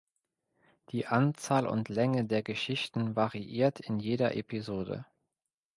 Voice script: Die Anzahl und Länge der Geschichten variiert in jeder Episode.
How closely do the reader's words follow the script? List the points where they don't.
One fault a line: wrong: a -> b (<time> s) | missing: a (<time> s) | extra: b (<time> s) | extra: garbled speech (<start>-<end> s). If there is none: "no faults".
no faults